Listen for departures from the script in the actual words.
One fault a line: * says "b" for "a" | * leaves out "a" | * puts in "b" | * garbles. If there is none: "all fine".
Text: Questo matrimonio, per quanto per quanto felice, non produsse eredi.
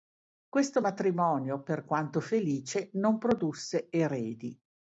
* leaves out "per quanto"